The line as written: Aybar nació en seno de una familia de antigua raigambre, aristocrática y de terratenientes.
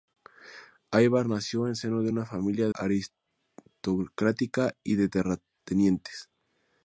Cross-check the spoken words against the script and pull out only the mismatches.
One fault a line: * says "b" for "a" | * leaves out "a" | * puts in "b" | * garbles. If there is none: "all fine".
* leaves out "de antigua raigambre"